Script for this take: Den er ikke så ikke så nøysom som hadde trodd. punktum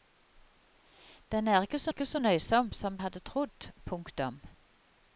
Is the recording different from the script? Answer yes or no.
no